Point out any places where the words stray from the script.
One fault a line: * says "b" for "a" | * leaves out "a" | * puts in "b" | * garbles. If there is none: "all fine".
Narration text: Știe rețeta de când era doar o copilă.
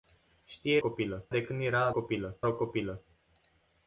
* says "copilă" for "rețeta"
* says "copilă" for "doar"